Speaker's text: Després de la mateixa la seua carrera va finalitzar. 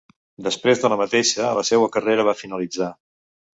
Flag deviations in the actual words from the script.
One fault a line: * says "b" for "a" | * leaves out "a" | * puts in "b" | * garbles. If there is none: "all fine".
all fine